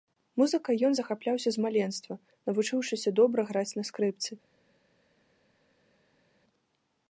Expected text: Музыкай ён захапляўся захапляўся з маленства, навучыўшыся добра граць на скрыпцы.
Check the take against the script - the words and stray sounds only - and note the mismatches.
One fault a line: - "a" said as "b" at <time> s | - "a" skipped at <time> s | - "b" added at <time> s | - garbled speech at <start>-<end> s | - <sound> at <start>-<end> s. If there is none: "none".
- "захапляўся" skipped at 1.5 s